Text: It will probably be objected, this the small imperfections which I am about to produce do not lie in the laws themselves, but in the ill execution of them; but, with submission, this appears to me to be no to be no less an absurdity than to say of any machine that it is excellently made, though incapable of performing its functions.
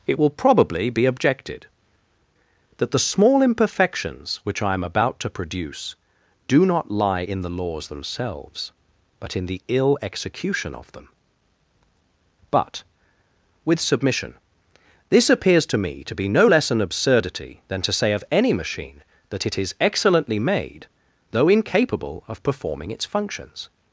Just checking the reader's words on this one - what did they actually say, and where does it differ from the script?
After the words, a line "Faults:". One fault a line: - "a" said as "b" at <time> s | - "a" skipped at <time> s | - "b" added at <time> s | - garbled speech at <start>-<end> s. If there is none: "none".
It will probably be objected, that the small imperfections which I am about to produce do not lie in the laws themselves, but in the ill execution of them; but, with submission, this appears to me to be no less an absurdity than to say of any machine that it is excellently made, though incapable of performing its functions.
Faults:
- "this" said as "that" at 2.8 s
- "to be no" skipped at 16.5 s